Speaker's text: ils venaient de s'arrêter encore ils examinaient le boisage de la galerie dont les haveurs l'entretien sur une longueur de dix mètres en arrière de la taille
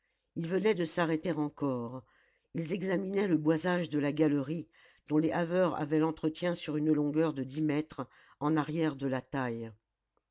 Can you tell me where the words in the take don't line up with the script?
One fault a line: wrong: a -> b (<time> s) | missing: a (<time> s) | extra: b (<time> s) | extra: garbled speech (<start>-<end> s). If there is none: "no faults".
extra: avaient (5.8 s)